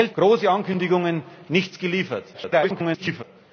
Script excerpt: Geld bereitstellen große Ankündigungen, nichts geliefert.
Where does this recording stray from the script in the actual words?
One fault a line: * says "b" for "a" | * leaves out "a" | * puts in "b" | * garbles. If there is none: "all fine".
* leaves out "bereitstellen"
* garbles